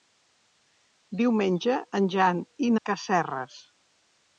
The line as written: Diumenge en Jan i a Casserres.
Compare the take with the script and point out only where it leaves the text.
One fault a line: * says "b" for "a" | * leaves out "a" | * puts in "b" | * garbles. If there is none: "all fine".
all fine